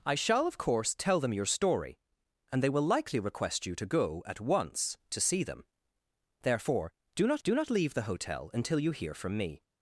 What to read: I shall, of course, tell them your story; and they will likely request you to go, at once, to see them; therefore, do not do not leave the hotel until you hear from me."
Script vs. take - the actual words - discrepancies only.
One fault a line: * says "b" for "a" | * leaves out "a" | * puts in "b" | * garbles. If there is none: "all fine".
all fine